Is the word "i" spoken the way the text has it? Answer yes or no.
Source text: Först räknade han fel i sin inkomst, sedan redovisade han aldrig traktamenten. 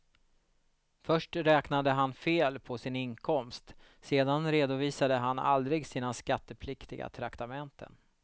no